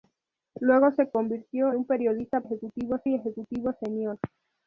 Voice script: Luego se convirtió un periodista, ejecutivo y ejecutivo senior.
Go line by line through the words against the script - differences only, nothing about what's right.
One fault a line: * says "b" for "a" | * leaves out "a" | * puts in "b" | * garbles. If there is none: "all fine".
all fine